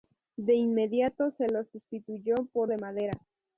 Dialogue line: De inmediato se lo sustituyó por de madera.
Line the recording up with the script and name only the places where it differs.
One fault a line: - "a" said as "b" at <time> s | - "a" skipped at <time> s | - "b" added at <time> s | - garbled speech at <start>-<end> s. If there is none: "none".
none